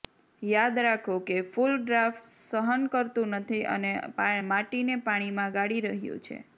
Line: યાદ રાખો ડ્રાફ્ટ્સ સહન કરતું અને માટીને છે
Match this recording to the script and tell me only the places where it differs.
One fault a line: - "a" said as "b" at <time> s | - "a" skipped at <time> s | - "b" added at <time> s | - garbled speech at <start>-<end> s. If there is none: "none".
- "કે ફૂલ" added at 1.2 s
- "નથી" added at 3.4 s
- "પાણીમાં ગાળી રહ્યું" added at 5.0 s